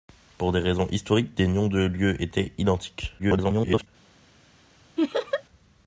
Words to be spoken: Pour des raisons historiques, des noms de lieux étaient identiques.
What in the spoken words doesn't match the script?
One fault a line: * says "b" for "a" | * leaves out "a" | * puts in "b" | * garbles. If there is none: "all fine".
* garbles